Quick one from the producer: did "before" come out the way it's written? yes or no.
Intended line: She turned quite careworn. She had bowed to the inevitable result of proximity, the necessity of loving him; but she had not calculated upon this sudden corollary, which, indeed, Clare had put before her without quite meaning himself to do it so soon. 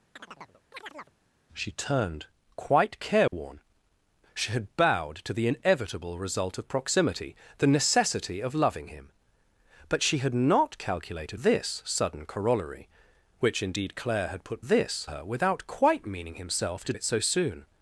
no